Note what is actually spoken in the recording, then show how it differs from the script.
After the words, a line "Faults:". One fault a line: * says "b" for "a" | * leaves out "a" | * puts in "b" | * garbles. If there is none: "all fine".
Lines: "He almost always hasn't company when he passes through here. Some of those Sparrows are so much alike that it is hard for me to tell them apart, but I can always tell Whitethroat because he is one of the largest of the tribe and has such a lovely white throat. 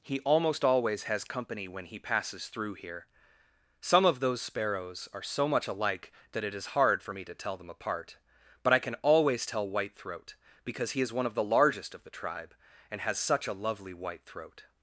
"He almost always has company when he passes through here. Some of those Sparrows are so much alike that it is hard for me to tell them apart, but I can always tell Whitethroat because he is one of the largest of the tribe and has such a lovely white throat.
Faults:
* says "has" for "hasn't"